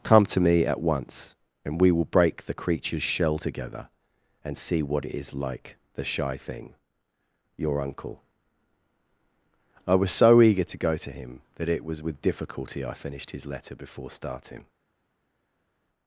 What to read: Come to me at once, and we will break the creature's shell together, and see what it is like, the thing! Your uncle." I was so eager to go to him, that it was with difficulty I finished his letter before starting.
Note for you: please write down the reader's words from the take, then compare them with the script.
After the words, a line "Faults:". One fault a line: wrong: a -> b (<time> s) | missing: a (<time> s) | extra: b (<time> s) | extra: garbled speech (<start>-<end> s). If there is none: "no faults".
Come to me at once, and we will break the creature's shell together, and see what it is like, the shy thing! Your uncle." I was so eager to go to him, that it was with difficulty I finished his letter before starting.
Faults:
extra: shy (6.0 s)